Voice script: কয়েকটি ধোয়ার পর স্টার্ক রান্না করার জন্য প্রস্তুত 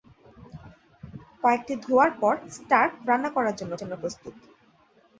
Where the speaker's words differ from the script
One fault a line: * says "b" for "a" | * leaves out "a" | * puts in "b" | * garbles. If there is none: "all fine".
* puts in "জন্য"